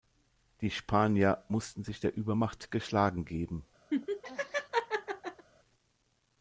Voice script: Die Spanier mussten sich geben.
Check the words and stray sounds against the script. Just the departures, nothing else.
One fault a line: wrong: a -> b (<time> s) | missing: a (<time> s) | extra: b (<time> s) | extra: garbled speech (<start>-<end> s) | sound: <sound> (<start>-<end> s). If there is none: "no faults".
extra: der Übermacht geschlagen (2.0 s)
sound: laugh (3.9-5.5 s)